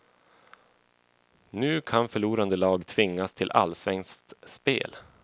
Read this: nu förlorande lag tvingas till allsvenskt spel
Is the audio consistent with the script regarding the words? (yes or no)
no